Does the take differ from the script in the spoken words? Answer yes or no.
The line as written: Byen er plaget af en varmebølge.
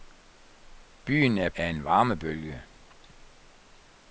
yes